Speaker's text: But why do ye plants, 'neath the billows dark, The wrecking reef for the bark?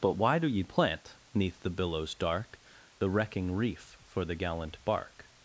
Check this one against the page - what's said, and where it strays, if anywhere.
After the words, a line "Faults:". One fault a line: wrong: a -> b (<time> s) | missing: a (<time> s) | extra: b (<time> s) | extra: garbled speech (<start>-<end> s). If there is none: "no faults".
But why do ye plant, 'neath the billows dark, The wrecking reef for the gallant bark?
Faults:
wrong: plants -> plant (0.6 s)
extra: gallant (4.3 s)